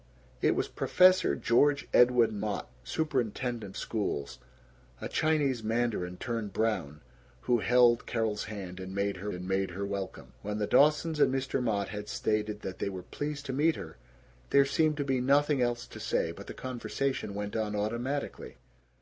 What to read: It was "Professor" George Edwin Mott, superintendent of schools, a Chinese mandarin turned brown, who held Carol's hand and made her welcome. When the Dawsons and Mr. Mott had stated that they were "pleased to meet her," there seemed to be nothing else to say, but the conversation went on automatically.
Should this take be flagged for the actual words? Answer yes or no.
yes